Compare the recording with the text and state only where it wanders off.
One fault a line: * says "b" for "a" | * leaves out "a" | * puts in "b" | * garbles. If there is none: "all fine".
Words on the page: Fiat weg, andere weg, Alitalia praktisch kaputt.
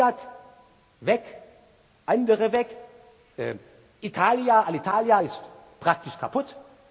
* puts in "ist"